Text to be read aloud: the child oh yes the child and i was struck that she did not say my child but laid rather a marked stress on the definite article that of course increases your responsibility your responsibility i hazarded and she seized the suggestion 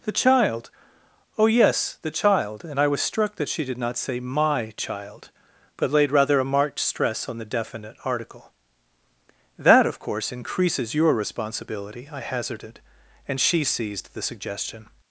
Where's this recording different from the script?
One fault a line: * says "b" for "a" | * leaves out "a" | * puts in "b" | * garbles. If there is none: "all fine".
* leaves out "your responsibility"